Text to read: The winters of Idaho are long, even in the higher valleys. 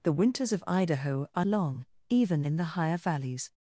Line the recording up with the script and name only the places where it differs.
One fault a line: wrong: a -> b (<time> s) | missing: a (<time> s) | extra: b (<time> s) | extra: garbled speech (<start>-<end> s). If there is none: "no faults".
no faults